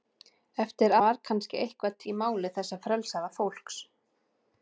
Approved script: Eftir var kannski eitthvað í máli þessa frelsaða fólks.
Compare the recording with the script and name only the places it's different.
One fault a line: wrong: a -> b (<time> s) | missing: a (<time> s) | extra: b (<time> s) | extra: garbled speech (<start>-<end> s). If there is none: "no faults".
no faults